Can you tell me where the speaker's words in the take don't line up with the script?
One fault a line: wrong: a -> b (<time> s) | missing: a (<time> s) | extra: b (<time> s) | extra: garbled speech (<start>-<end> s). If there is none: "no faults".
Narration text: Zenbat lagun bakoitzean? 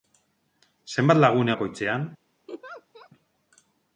no faults